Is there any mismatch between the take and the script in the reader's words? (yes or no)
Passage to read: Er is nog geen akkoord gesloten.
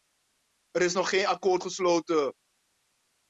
no